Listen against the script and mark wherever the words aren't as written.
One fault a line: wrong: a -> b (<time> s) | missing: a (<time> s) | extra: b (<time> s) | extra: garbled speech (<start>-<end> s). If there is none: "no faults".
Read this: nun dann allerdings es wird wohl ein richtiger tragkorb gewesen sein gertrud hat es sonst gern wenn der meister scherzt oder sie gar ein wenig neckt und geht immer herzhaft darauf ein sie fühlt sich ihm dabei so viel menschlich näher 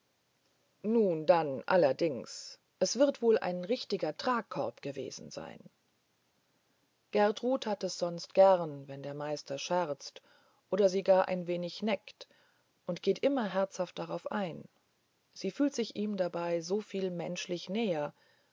no faults